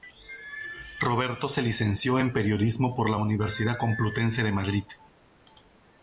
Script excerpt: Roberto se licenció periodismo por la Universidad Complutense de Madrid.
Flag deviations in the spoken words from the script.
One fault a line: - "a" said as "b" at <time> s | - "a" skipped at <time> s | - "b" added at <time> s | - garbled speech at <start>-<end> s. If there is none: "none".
- "en" added at 2.2 s